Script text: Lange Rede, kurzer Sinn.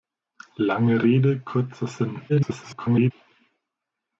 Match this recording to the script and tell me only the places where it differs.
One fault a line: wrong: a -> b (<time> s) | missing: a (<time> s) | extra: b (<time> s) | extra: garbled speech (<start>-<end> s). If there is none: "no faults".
extra: garbled speech (2.3-3.1 s)